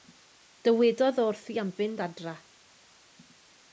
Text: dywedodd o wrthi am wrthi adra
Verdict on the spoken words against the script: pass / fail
fail